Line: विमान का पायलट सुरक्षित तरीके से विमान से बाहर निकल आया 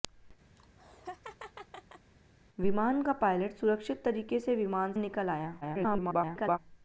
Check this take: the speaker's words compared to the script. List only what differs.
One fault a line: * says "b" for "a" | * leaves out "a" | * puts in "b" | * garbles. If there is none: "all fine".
* leaves out "से बाहर"
* garbles